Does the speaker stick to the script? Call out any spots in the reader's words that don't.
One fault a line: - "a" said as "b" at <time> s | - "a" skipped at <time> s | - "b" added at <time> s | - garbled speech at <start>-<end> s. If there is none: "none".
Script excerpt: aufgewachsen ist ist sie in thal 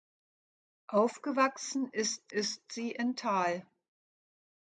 none